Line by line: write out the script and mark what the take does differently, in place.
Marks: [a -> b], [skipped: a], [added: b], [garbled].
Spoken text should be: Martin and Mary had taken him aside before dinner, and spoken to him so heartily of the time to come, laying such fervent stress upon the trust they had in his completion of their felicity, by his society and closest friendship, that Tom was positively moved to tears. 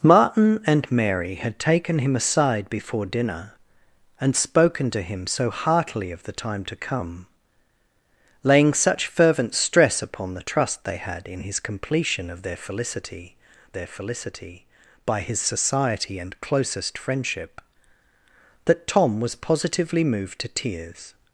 Martin and Mary had taken him aside before dinner, and spoken to him so heartily of the time to come, laying such fervent stress upon the trust they had in his completion of their felicity, [added: their felicity] by his society and closest friendship, that Tom was positively moved to tears.